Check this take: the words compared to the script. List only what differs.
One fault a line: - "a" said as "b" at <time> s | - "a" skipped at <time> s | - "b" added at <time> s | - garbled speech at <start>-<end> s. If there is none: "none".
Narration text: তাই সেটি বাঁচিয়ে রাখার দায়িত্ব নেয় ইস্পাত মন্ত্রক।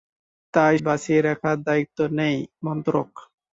- "সেটি" skipped at 0.8 s
- "ইস্পাত" skipped at 2.4 s